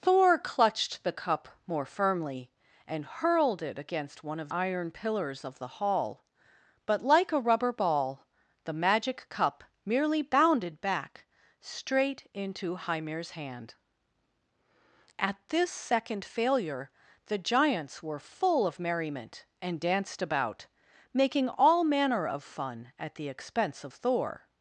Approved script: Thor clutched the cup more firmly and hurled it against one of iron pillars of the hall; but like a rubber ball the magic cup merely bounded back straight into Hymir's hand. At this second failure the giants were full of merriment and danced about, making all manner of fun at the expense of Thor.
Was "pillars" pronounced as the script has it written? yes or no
yes